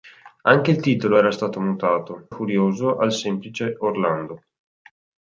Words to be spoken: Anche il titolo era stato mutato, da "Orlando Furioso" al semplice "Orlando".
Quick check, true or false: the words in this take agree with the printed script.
false